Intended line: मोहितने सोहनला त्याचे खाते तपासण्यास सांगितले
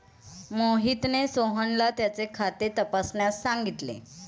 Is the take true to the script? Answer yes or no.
yes